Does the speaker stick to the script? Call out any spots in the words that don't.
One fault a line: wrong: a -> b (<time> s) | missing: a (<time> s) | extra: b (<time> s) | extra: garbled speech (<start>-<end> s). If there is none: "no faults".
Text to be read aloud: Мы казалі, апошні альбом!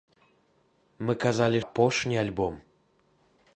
no faults